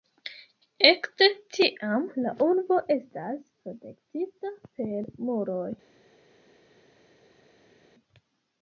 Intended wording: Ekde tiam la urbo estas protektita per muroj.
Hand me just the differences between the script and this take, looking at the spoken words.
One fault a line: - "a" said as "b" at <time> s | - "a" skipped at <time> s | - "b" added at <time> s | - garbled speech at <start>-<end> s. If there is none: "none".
none